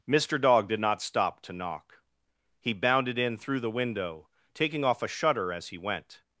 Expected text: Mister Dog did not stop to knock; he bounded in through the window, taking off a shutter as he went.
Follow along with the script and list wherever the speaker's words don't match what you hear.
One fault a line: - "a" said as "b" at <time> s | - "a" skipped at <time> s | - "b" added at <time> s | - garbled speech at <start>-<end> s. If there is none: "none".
none